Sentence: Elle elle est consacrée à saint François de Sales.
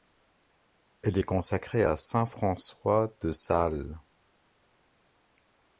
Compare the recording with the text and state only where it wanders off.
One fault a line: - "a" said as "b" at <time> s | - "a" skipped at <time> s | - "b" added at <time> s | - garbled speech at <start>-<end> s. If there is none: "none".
- "elle" skipped at 1.2 s